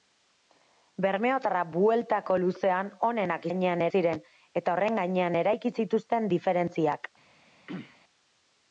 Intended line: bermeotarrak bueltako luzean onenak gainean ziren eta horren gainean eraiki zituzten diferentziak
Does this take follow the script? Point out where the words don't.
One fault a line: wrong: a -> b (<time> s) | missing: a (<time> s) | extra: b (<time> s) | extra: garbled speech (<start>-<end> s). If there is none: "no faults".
no faults